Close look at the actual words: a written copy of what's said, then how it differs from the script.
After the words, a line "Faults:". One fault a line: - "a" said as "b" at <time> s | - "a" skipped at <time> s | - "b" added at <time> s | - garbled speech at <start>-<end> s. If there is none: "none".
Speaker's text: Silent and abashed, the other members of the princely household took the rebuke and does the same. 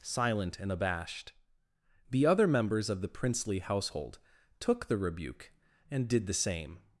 Silent and abashed, the other members of the princely household took the rebuke and did the same.
Faults:
- "does" said as "did" at 6.1 s